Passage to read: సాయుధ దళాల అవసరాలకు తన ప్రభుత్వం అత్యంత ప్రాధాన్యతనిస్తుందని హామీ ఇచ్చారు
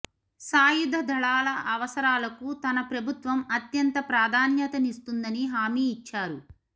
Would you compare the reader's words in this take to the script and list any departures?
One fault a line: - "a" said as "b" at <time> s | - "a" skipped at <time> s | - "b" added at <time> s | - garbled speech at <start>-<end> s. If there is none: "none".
none